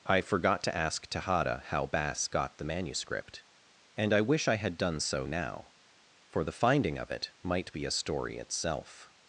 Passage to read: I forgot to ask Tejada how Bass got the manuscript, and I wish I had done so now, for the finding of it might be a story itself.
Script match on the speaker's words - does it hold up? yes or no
yes